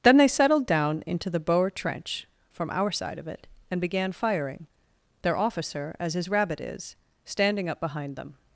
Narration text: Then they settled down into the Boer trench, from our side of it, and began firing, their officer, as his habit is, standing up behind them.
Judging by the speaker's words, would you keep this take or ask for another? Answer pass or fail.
fail